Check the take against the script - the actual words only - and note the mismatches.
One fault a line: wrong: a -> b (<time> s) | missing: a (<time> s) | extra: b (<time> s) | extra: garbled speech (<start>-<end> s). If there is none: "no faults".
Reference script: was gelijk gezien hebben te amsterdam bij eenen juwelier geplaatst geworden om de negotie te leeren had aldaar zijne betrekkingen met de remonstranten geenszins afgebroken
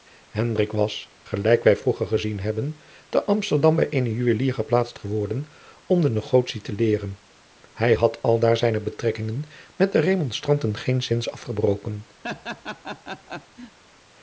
extra: wij vroeger (1.6 s)
extra: hij (7.7 s)